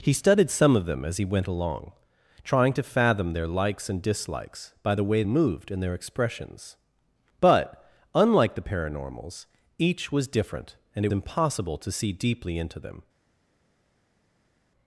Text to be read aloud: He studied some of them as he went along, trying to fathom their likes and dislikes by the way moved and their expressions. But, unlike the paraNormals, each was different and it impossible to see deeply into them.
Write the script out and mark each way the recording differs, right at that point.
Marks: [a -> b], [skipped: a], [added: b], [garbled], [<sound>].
He studied some of them as he went along, trying to fathom their likes and dislikes by the way moved and their expressions. But, unlike the paraNormals, each was different and it impossible to see deeply into them.